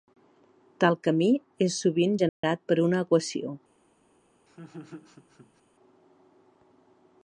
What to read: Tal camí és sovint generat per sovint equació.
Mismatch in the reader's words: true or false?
true